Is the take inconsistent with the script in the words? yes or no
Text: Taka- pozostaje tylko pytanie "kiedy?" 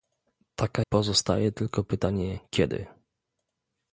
no